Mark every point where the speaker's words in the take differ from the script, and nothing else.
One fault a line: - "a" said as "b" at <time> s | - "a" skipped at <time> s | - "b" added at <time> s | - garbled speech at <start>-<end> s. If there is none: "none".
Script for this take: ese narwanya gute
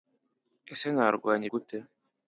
none